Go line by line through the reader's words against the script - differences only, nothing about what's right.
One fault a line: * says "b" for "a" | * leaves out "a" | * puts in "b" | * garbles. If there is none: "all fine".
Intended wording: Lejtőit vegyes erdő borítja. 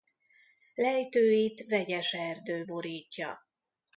all fine